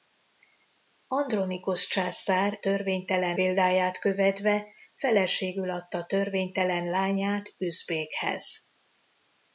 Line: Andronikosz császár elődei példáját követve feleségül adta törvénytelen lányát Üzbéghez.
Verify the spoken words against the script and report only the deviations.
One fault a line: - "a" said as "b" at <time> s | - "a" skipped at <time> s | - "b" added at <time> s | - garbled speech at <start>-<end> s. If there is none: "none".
- "elődei" said as "törvénytelen" at 2.6 s